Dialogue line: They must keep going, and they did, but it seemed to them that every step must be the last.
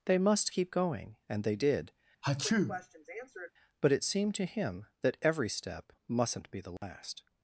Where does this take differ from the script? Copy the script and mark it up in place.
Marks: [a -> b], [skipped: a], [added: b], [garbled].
They must keep going, and they did, but it seemed to [them -> him] that every step [must -> mustn't] be the last.